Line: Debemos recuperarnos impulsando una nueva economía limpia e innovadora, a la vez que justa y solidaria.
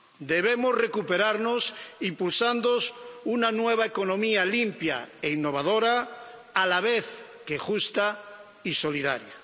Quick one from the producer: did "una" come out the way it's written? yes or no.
yes